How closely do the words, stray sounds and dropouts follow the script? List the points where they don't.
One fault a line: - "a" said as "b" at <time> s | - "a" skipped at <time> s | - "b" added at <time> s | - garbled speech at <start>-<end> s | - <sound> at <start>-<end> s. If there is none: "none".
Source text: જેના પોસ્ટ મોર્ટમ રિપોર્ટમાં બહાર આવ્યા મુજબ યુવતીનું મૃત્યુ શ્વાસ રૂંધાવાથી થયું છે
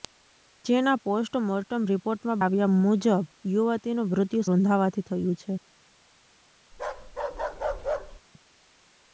- "બહાર" skipped at 2.4 s
- "શ્વાસ" skipped at 4.5 s
- bark at 6.7-8.2 s